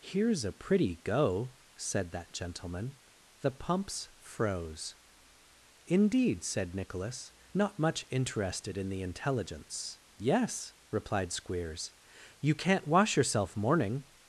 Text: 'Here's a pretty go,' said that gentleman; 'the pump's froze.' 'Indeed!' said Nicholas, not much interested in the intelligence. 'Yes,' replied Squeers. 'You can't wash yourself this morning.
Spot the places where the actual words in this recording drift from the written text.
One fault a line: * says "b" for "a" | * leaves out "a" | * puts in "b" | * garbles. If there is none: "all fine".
* leaves out "this"